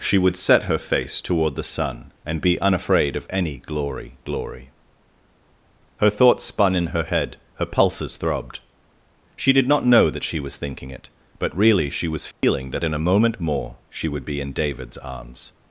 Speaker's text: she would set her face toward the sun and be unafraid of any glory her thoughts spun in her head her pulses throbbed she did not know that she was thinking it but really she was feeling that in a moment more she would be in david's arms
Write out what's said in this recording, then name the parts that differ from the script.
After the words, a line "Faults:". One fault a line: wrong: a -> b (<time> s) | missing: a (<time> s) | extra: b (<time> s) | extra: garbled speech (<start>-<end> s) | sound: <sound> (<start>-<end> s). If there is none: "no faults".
she would set her face toward the sun and be unafraid of any glory glory her thoughts spun in her head her pulses throbbed she did not know that she was thinking it but really she was feeling that in a moment more she would be in david's arms
Faults:
extra: glory (4.2 s)
sound: dropout (12.3-12.4 s)